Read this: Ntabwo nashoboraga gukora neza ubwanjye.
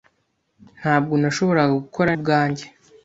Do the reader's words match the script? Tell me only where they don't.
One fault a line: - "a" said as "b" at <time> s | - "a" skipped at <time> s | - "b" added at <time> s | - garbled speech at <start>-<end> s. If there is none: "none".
- "neza" skipped at 2.1 s